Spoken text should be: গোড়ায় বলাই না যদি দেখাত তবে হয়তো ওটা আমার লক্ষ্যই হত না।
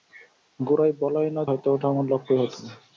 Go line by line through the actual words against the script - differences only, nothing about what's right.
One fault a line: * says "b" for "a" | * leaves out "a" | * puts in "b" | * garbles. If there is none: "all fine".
* leaves out "যদি দেখাত তবে"